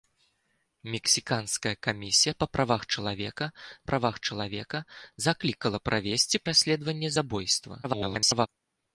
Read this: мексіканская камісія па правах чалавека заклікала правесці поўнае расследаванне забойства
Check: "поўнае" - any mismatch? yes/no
yes